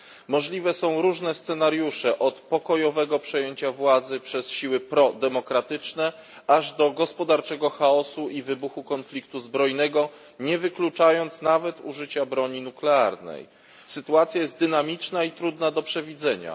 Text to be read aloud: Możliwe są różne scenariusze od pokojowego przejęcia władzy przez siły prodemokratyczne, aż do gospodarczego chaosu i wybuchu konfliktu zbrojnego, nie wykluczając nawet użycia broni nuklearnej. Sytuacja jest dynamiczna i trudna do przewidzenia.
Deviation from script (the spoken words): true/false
false